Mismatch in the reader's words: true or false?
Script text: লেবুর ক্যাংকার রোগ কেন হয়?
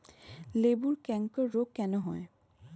false